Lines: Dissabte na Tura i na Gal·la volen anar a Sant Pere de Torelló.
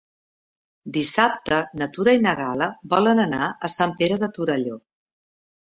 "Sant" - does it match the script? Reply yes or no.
yes